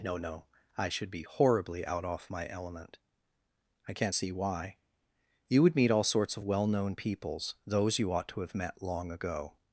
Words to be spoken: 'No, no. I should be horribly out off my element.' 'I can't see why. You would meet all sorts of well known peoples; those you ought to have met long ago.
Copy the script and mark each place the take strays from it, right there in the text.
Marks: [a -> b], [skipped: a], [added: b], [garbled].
'No, no. I should be horribly out off my element.' 'I can't see why. You would meet all sorts of well known peoples; those you ought to have met long ago.